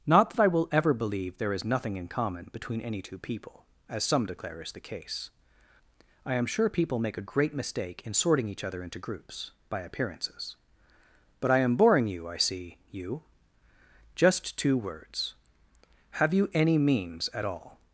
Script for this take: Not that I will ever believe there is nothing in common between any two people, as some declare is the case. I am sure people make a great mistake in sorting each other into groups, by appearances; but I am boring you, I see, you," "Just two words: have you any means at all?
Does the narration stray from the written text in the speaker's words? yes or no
no